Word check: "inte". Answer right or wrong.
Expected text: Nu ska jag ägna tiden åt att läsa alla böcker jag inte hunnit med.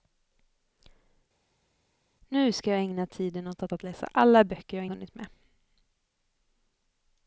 wrong